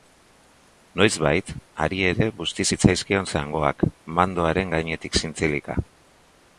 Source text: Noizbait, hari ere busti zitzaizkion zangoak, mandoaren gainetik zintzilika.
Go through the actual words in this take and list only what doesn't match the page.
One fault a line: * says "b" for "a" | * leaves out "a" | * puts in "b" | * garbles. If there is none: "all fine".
all fine